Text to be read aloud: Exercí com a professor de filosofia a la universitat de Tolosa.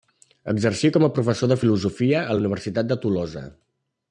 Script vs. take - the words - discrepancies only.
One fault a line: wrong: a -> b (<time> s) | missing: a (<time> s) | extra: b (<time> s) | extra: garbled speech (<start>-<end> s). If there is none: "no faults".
no faults